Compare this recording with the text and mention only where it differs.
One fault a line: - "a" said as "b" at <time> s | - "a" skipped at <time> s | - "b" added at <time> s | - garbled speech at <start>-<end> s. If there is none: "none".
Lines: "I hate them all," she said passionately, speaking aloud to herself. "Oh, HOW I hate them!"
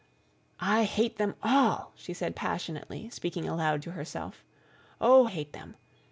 - "HOW I" skipped at 5.3 s